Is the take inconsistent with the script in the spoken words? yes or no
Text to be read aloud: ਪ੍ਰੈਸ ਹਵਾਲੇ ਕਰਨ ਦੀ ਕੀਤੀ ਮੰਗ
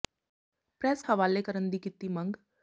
no